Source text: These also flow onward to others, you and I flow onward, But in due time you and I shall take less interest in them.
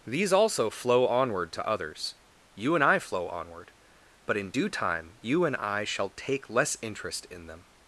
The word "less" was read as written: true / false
true